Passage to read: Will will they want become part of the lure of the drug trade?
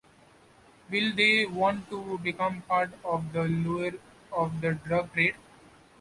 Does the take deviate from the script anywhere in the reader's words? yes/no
yes